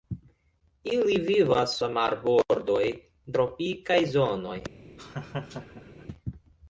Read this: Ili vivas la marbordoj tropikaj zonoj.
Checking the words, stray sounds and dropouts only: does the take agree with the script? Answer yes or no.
no